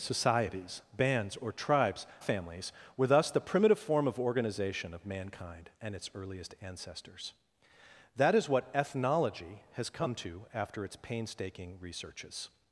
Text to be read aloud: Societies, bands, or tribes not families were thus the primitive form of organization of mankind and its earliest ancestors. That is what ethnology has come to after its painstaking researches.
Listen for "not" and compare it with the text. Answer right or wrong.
wrong